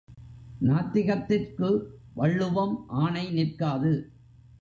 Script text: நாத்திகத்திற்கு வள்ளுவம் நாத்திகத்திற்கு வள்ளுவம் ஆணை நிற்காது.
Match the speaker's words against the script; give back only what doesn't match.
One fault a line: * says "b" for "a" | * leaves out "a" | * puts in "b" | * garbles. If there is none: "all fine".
* leaves out "நாத்திகத்திற்கு வள்ளுவம்"